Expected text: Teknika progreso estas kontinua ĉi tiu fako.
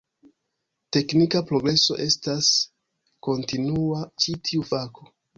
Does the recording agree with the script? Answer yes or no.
yes